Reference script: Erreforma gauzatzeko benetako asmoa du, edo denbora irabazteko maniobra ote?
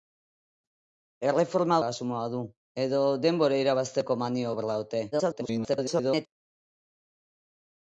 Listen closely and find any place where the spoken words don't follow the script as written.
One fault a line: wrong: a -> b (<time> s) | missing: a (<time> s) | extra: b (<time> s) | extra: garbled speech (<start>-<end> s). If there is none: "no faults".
missing: gauzatzeko benetako (1.8 s)
extra: garbled speech (5.1-6.3 s)